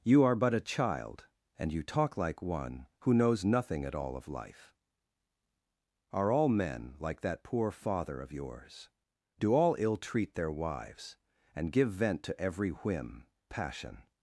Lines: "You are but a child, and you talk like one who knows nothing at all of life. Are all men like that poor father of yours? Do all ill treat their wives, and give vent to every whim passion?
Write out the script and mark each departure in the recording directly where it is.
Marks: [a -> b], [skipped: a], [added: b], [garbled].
"You are but a child, and you talk like one who knows nothing at all of life. Are all men like that poor father of yours? Do all ill treat their wives, and give vent to every whim passion?